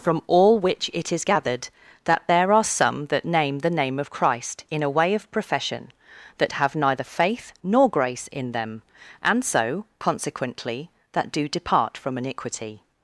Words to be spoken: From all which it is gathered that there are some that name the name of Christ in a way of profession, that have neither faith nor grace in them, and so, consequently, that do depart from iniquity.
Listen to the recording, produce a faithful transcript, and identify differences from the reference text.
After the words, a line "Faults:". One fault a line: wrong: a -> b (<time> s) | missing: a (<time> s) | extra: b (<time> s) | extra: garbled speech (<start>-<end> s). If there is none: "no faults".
From all which it is gathered that there are some that name the name of Christ in a way of profession, that have neither faith nor grace in them, and so, consequently, that do depart from iniquity.
Faults:
no faults